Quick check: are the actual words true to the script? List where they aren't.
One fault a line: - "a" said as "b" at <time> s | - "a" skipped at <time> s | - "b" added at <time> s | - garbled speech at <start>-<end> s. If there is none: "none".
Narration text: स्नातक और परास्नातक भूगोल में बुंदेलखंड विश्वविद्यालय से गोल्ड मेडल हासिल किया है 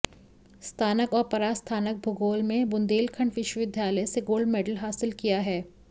none